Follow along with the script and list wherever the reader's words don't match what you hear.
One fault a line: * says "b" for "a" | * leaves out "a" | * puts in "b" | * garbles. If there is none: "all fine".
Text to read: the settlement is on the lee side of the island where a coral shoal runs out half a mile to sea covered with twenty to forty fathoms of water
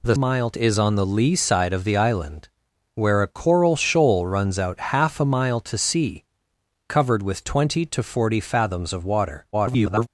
* says "mile" for "settlement"
* garbles